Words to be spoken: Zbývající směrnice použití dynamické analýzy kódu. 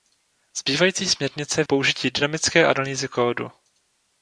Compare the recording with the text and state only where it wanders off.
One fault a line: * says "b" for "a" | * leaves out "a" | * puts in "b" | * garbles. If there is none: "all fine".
all fine